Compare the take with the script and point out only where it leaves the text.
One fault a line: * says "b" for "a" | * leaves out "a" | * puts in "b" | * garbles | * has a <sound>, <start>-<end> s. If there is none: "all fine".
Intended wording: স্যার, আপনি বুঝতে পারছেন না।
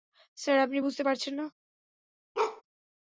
* has a bark, 2.3-2.6 s